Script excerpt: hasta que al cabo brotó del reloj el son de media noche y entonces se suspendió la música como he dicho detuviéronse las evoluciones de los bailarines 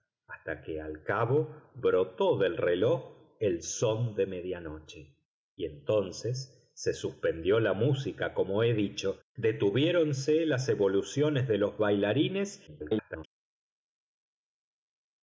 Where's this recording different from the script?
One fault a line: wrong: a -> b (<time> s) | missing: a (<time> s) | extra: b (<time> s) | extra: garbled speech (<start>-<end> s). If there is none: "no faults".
extra: garbled speech (12.7-13.2 s)